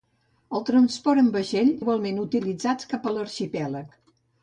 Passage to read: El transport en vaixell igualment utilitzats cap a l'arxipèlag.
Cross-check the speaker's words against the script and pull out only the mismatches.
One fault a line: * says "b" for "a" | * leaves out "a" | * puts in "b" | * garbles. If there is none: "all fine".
all fine